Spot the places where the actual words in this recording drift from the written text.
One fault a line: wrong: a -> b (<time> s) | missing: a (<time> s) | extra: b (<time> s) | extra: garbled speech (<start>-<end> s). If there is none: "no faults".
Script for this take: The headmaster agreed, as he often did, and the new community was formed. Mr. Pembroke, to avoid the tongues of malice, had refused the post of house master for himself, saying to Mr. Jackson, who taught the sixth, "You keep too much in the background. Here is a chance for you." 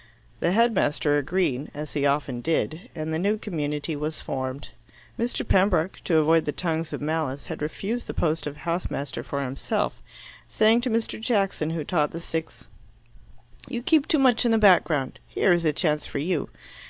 no faults